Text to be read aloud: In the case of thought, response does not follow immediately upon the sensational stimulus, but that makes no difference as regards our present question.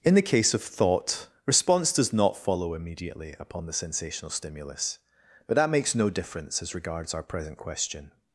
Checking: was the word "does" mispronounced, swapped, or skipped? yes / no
no